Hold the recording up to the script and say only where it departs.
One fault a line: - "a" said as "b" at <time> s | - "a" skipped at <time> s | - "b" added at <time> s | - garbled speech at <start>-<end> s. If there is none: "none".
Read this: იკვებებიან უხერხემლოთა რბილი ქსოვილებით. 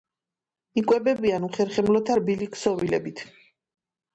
none